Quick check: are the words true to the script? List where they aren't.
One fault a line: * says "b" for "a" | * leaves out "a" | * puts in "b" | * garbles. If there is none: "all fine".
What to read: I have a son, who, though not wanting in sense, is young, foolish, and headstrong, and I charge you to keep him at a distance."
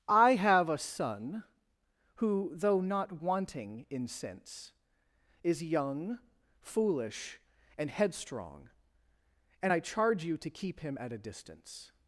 all fine